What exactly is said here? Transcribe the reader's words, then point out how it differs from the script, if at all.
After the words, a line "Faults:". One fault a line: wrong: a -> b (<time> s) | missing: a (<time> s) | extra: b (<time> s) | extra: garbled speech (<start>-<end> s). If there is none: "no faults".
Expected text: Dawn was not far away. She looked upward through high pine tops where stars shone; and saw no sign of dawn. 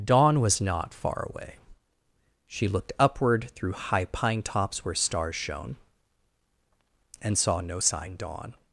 Dawn was not far away. She looked upward through high pine tops where stars shone; and saw no sign dawn.
Faults:
missing: of (8.2 s)